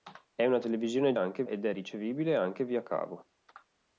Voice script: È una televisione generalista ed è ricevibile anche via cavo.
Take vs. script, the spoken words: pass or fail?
fail